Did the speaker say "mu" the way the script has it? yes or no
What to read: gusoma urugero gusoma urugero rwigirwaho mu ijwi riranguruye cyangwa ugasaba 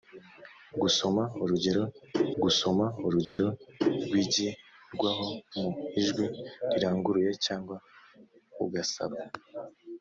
yes